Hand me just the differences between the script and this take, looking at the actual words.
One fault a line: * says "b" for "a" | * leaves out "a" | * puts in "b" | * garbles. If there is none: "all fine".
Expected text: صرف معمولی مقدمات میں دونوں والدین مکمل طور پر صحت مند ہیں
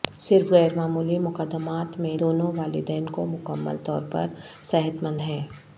* puts in "غیر"
* puts in "کو"